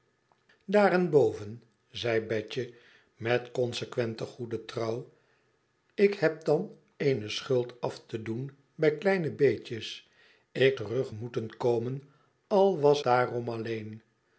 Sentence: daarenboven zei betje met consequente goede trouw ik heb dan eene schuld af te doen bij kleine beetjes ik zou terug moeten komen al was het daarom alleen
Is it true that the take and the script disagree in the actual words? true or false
true